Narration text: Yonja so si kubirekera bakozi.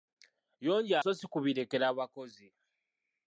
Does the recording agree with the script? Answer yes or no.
yes